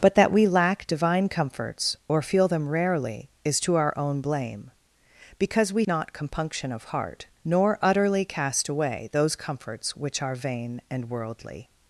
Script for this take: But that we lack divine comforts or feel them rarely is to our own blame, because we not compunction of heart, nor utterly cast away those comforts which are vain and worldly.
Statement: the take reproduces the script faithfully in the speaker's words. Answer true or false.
true